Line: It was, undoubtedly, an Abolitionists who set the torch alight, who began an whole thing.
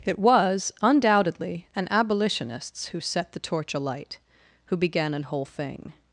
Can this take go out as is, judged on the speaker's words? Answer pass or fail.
pass